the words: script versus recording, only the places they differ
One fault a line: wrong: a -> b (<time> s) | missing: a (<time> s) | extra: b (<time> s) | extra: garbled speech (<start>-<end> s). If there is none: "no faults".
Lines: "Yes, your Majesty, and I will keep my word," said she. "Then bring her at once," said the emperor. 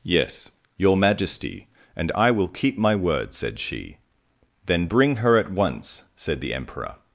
no faults